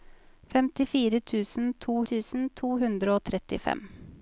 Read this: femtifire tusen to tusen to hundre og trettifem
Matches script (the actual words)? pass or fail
pass